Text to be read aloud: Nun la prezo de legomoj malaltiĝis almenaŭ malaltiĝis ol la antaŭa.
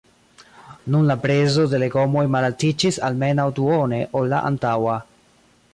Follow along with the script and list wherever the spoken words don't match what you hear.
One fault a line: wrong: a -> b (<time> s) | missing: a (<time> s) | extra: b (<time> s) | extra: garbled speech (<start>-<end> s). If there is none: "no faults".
wrong: malaltiĝis -> duone (3.6 s)